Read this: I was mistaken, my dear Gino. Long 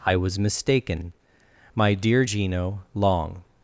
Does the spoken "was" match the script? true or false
true